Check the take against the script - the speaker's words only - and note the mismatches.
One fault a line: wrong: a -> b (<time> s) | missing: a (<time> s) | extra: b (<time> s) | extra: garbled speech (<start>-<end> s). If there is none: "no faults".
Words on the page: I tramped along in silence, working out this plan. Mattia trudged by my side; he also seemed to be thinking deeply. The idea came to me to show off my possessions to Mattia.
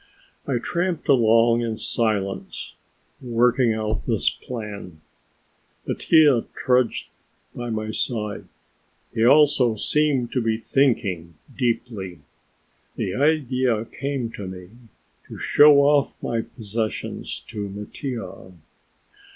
no faults